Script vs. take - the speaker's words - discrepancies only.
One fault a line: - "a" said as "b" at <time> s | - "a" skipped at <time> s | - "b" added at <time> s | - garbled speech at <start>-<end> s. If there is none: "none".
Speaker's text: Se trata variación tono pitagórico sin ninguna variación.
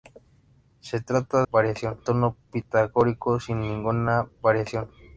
none